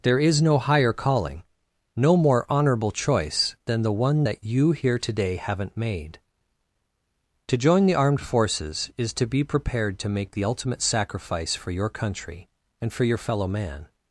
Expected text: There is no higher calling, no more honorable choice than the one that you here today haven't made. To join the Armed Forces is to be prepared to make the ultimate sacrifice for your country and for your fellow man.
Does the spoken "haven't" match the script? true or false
true